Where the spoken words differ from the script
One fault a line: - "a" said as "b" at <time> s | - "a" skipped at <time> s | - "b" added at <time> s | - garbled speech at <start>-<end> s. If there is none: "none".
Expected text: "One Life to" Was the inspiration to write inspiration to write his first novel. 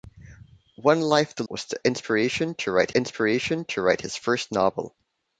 none